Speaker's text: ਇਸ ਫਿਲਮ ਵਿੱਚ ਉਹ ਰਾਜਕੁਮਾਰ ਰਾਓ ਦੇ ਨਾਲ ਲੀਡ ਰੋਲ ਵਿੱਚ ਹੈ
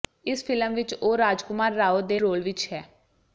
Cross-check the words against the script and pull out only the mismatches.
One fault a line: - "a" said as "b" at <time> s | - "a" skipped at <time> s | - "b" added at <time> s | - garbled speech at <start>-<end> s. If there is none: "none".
- "ਨਾਲ ਲੀਡ" skipped at 2.2 s